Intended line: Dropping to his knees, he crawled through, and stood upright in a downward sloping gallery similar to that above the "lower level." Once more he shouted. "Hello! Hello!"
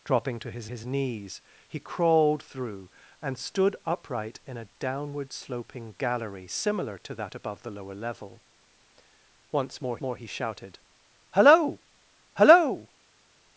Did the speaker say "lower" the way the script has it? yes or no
yes